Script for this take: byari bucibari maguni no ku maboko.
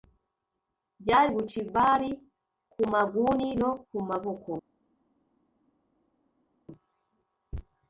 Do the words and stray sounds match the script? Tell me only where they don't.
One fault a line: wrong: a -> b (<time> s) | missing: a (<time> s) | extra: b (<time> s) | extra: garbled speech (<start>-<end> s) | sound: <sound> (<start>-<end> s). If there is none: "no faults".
extra: ku (2.7 s)